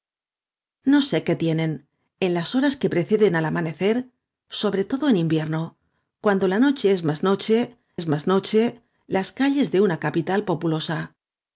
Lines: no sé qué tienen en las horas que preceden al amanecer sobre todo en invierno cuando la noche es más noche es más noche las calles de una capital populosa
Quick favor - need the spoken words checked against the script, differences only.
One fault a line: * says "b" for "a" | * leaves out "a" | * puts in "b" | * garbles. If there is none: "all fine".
all fine